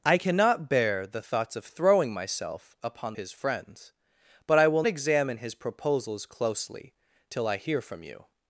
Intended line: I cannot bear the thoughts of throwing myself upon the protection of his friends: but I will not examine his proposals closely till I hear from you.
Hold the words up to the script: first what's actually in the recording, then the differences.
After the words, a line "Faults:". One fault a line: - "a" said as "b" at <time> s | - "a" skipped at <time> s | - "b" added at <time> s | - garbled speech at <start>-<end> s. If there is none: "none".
I cannot bear the thoughts of throwing myself upon his friends: but I will examine his proposals closely till I hear from you.
Faults:
- "the protection of" skipped at 3.2 s
- "not" skipped at 4.8 s